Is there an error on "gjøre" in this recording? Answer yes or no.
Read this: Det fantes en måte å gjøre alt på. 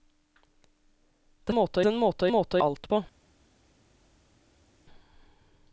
yes